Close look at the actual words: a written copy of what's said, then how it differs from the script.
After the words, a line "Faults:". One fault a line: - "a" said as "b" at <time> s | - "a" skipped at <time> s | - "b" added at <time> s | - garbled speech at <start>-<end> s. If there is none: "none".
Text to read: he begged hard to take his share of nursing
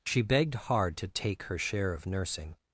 she begged hard to take her share of nursing
Faults:
- "he" said as "she" at 0.1 s
- "his" said as "her" at 1.4 s